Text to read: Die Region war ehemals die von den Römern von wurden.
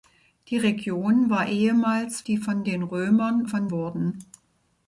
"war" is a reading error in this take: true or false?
false